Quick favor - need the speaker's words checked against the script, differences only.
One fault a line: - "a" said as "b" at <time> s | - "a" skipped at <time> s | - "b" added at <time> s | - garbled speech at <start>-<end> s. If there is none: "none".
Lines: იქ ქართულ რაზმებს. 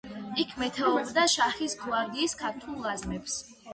- "მეთაურობდა შაჰის გვარდიის" added at 0.6 s